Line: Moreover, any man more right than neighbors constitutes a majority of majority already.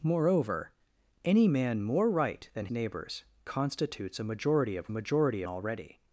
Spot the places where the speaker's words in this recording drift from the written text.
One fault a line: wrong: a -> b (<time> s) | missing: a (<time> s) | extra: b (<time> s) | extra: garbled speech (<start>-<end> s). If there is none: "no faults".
no faults